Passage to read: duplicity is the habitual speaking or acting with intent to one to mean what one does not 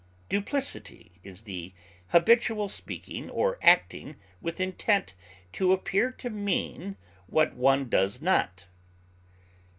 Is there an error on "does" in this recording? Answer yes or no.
no